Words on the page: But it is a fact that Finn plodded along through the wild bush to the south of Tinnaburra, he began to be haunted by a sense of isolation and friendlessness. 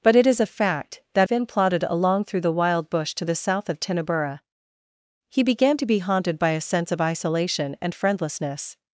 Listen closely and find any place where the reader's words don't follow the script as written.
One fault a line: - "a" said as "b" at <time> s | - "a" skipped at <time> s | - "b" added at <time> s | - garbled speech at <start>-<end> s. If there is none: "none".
none